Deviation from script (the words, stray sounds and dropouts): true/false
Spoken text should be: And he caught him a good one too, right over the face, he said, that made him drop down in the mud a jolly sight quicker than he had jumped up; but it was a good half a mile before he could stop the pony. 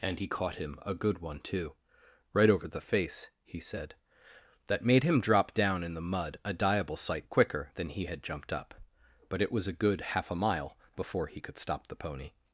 true